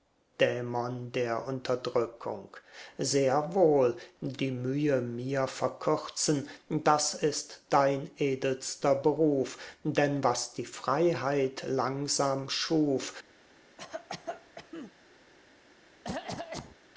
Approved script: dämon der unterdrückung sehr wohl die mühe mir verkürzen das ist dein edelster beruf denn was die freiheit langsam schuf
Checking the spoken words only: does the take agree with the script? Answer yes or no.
yes